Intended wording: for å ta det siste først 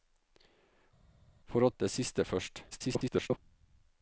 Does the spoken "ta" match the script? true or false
false